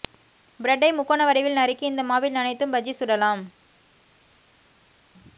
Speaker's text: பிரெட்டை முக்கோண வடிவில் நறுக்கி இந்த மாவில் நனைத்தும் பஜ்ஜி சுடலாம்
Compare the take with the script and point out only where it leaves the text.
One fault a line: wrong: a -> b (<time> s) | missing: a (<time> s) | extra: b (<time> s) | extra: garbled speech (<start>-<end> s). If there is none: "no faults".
no faults